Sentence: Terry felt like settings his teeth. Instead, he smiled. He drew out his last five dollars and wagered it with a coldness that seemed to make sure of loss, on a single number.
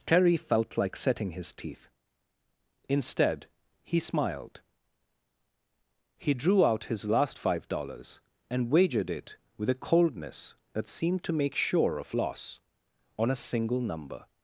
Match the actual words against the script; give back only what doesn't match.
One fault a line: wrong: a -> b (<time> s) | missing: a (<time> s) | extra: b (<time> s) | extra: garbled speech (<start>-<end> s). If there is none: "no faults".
wrong: settings -> setting (0.9 s)